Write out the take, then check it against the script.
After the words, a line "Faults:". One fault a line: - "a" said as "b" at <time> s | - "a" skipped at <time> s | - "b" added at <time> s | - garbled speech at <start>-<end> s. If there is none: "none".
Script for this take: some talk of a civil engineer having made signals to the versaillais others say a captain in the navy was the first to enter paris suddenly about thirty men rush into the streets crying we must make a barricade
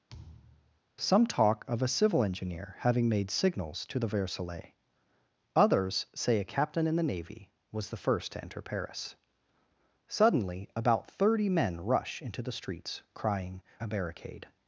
some talk of a civil engineer having made signals to the versaillais others say a captain in the navy was the first to enter paris suddenly about thirty men rush into the streets crying a barricade
Faults:
- "we must make" skipped at 13.6 s